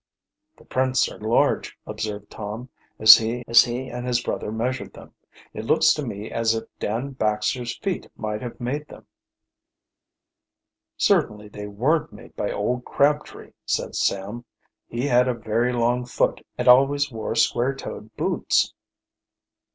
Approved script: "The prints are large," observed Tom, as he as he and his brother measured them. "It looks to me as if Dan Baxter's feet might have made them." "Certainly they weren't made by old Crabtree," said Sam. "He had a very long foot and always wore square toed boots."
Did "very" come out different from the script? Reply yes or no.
no